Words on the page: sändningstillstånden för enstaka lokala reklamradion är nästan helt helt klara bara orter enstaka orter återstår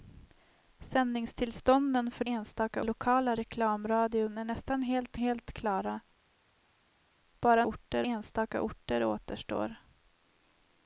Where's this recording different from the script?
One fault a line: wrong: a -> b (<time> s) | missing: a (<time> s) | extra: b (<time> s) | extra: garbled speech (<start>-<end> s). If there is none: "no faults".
no faults